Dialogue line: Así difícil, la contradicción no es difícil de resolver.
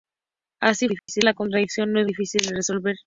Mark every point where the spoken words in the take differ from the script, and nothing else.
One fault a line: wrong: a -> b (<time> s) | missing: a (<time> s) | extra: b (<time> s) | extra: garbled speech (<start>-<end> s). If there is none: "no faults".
no faults